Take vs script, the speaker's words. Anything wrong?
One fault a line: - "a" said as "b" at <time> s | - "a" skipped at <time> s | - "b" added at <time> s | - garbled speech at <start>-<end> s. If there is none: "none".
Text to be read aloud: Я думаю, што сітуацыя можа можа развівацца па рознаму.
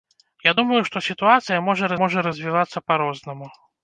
none